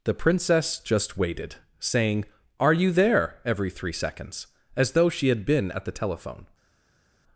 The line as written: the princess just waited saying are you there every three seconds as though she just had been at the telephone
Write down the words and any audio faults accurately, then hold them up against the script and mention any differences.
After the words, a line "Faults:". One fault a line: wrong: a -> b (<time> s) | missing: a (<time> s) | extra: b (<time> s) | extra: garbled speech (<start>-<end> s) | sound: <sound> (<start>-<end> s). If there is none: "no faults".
the princess just waited saying are you there every three seconds as though she had been at the telephone
Faults:
missing: just (5.3 s)